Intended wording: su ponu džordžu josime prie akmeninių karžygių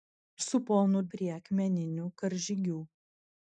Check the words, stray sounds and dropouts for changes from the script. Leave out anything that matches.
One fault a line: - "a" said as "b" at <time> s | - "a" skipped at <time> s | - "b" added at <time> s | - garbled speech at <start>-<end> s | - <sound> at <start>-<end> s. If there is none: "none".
- "džordžu josime" skipped at 1.0 s